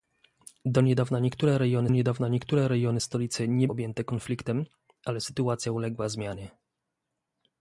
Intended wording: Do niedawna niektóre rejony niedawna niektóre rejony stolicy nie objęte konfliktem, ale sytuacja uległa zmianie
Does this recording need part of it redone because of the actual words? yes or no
no